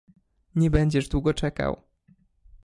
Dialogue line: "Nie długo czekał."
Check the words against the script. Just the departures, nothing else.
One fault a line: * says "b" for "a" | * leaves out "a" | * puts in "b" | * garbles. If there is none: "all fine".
* puts in "będziesz"